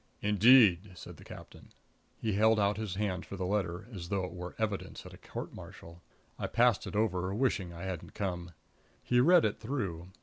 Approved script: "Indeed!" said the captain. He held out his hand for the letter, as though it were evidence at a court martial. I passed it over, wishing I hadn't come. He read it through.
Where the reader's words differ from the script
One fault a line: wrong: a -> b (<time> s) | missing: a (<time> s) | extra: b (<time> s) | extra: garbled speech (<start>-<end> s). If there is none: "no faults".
no faults